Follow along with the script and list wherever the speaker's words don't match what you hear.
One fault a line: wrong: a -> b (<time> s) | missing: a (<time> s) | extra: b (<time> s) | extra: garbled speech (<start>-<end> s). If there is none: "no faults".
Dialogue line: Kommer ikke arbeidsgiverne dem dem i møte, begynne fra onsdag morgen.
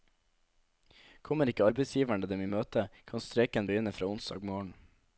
missing: dem (2.4 s)
extra: kan streiken (3.1 s)